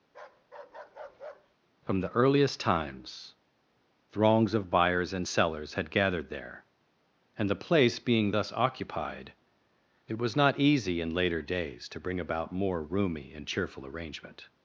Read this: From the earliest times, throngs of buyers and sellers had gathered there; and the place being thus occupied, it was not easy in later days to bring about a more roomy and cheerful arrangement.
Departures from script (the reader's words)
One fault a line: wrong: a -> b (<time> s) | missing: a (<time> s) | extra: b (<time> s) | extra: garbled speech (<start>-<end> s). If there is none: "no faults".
missing: a (12.5 s)